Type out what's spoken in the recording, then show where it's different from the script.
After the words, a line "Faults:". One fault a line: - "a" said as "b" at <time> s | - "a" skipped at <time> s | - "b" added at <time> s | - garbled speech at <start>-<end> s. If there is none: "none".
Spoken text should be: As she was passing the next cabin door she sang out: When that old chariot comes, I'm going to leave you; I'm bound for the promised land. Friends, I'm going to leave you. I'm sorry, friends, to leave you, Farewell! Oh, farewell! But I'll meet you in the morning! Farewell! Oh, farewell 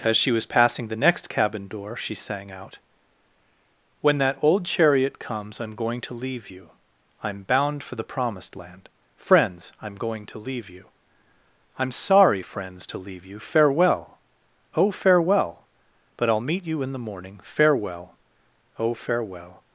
As she was passing the next cabin door she sang out: When that old chariot comes, I'm going to leave you; I'm bound for the promised land. Friends, I'm going to leave you. I'm sorry, friends, to leave you, Farewell! Oh, farewell! But I'll meet you in the morning! Farewell! Oh, farewell
Faults:
none